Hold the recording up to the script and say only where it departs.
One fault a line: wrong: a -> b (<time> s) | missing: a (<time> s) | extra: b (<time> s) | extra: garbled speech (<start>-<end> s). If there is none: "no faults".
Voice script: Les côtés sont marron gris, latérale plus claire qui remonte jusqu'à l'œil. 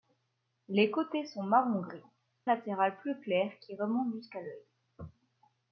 no faults